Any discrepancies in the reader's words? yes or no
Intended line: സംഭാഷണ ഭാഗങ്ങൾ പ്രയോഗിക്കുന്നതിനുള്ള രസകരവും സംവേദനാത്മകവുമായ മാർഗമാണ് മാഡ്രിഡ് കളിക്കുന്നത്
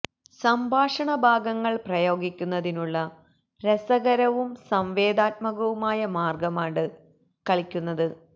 yes